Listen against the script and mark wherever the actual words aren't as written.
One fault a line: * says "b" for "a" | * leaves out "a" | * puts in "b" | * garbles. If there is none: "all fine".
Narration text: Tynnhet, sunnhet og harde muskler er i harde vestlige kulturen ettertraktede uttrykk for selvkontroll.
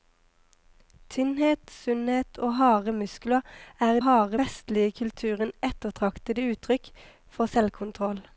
all fine